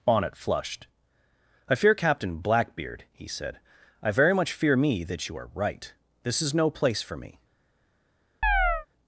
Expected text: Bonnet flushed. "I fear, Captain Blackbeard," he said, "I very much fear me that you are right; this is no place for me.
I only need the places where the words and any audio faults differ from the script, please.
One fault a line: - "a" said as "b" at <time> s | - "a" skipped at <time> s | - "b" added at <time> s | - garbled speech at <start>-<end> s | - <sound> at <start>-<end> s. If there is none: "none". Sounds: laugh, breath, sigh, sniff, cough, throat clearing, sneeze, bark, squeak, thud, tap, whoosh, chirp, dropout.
- chirp at 8.4-8.9 s